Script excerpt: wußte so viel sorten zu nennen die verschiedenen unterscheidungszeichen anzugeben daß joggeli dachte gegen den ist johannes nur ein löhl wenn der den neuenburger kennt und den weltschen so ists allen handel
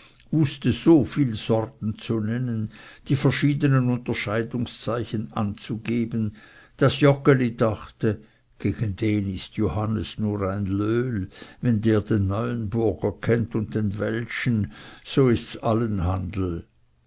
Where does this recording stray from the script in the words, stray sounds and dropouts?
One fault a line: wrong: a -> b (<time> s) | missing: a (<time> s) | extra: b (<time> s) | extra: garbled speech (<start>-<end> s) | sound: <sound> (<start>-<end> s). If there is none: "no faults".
no faults